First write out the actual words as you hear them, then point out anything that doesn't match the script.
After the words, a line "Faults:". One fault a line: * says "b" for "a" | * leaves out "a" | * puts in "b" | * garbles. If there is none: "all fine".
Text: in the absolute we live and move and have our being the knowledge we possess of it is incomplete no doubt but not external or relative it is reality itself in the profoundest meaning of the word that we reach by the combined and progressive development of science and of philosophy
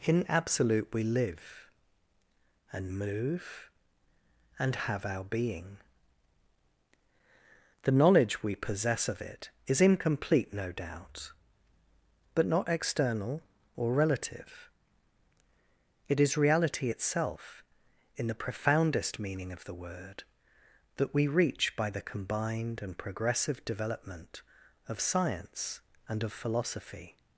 in absolute we live and move and have our being the knowledge we possess of it is incomplete no doubt but not external or relative it is reality itself in the profoundest meaning of the word that we reach by the combined and progressive development of science and of philosophy
Faults:
* leaves out "the"